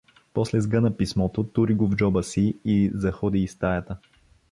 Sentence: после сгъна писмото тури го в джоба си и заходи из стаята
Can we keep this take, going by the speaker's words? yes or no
yes